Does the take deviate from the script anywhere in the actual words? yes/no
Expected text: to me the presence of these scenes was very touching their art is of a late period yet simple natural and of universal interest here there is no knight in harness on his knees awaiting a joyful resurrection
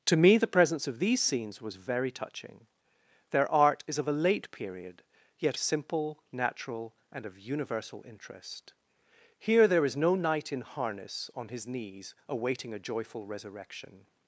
no